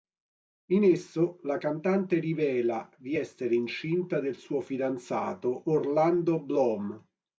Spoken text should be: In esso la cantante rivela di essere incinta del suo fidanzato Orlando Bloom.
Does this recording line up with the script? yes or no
yes